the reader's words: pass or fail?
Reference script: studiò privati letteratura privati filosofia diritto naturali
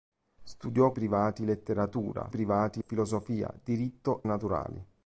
pass